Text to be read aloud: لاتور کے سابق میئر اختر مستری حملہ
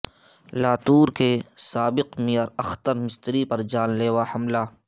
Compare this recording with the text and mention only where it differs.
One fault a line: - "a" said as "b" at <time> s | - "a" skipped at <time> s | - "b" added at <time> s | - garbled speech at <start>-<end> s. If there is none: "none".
- "پر جان لیوا" added at 3.5 s